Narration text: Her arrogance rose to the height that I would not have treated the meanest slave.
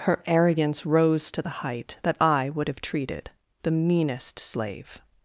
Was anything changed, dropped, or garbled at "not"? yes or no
yes